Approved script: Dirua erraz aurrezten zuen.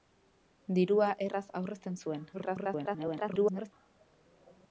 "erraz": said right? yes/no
yes